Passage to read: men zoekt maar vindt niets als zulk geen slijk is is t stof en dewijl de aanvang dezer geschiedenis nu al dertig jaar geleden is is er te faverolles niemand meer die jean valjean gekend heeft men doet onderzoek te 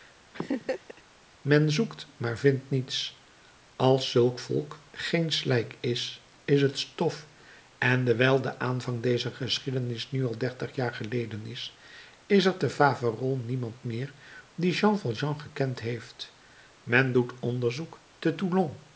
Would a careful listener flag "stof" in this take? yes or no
no